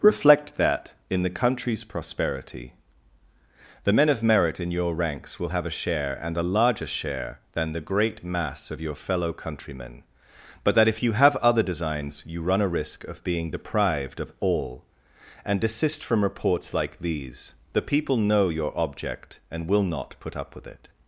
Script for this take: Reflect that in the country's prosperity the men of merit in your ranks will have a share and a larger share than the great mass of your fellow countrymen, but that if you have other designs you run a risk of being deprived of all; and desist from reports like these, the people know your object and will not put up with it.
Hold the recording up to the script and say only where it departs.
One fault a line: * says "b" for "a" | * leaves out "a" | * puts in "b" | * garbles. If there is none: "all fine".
all fine